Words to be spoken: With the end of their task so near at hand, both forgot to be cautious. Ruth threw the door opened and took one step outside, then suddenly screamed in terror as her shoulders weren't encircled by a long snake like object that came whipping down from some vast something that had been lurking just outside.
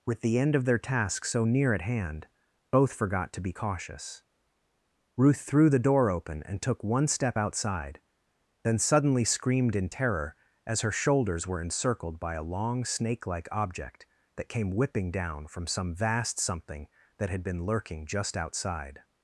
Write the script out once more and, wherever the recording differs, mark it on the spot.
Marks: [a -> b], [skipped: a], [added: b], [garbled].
With the end of their task so near at hand, both forgot to be cautious. Ruth threw the door [opened -> open] and took one step outside, then suddenly screamed in terror as her shoulders [weren't -> were] encircled by a long snake like object that came whipping down from some vast something that had been lurking just outside.